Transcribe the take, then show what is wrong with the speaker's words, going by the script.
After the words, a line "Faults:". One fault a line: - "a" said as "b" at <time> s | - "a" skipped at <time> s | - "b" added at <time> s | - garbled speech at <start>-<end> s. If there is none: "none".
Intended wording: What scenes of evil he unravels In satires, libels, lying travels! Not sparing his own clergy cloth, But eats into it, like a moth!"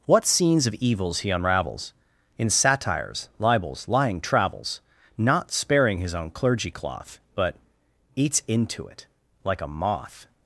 What scenes of evils he unravels In satires, libels, lying travels! Not sparing his own clergy cloth, But eats into it, like a moth!"
Faults:
- "evil" said as "evils" at 0.8 s